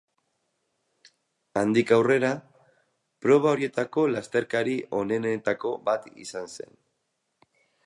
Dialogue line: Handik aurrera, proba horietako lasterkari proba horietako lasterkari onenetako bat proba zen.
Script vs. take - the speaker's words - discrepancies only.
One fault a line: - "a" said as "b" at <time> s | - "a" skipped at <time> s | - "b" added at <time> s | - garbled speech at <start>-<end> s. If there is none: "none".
- "proba horietako lasterkari" skipped at 4.8 s
- "proba" said as "izan" at 6.3 s